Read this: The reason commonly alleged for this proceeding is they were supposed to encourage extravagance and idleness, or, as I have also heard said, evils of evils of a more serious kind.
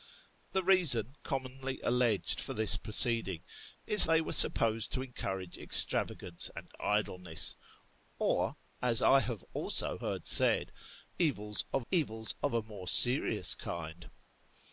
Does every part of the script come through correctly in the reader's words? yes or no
yes